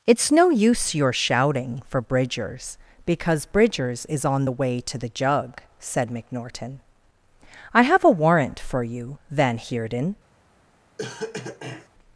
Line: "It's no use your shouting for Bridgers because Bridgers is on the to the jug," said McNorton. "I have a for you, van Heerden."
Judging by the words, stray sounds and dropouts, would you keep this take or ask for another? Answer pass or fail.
fail